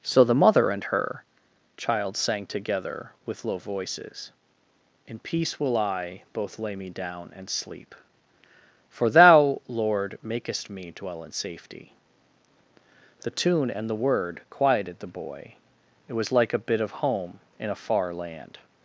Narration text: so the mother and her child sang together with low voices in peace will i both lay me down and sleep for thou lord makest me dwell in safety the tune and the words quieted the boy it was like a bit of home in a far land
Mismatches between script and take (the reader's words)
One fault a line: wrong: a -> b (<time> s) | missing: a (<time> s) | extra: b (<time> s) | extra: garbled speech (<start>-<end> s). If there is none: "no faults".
wrong: words -> word (13.9 s)